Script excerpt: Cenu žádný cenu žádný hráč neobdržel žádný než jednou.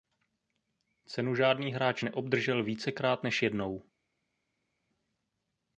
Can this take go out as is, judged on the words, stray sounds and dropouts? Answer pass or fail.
fail